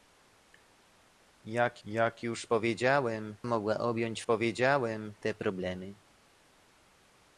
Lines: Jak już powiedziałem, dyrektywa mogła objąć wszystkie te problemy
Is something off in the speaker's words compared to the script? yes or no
yes